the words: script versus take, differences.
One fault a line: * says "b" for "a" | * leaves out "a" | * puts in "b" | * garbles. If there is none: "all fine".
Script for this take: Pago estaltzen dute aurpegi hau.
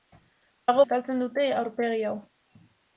all fine